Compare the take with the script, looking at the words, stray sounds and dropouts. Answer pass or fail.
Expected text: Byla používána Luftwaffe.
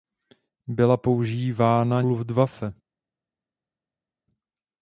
pass